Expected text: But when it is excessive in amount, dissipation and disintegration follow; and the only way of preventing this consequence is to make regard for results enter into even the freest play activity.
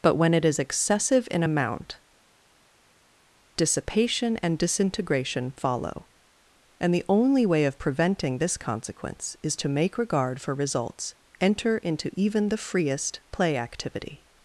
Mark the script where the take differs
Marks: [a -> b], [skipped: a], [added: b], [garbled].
But when it is excessive in amount, dissipation and disintegration follow; and the only way of preventing this consequence is to make regard for results enter into even the freest play activity.